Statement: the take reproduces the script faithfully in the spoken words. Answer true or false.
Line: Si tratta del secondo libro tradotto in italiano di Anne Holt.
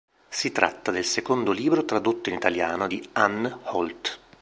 true